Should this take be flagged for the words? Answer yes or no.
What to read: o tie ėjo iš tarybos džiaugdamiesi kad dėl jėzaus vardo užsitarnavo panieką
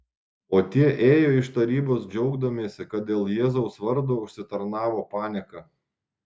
no